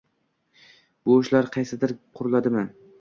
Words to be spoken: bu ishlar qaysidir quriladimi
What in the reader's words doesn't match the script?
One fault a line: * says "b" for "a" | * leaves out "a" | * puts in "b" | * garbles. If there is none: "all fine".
all fine